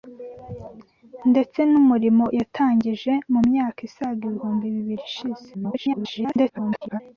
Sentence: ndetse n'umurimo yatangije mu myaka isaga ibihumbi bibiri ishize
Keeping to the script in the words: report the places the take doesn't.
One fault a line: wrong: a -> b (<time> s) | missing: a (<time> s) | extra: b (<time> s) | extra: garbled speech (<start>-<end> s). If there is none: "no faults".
extra: garbled speech (5.5-7.0 s)